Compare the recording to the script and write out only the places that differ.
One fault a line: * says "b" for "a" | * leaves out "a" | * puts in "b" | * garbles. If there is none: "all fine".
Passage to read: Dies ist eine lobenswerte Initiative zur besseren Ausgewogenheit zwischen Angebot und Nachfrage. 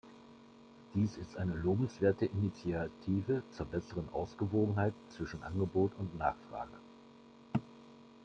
all fine